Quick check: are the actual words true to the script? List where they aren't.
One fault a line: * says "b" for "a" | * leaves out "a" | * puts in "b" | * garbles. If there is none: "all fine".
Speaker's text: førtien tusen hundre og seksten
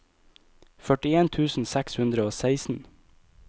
* puts in "seks"